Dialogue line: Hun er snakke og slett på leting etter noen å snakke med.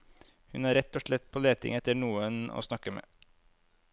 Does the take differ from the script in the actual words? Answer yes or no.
yes